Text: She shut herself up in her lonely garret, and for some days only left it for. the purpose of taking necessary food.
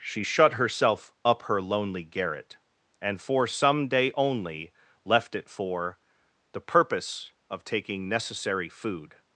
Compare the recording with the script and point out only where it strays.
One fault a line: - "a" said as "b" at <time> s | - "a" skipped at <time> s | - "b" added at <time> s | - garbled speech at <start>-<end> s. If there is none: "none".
- "in" skipped at 1.4 s
- "days" said as "day" at 3.9 s